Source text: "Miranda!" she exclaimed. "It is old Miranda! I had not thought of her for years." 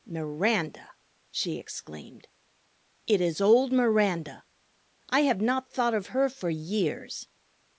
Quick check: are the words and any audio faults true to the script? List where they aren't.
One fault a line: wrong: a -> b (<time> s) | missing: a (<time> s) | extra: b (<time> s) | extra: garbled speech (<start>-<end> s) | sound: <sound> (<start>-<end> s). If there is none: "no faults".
wrong: had -> have (5.2 s)